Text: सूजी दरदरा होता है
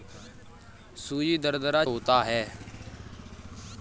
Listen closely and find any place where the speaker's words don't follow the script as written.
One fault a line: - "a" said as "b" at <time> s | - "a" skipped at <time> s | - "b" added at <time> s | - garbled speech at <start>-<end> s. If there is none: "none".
none